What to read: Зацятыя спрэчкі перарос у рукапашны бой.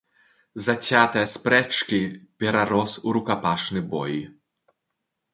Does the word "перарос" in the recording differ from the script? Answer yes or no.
no